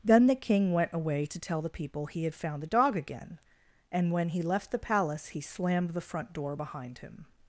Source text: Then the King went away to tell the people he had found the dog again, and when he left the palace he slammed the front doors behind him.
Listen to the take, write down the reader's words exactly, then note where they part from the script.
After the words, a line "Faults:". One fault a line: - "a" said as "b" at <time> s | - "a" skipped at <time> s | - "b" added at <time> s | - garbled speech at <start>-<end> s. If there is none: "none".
Then the King went away to tell the people he had found the dog again, and when he left the palace he slammed the front door behind him.
Faults:
- "doors" said as "door" at 6.3 s